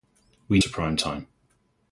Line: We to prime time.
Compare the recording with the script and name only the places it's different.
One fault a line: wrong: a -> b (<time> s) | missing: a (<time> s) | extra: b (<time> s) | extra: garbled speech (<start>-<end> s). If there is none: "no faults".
no faults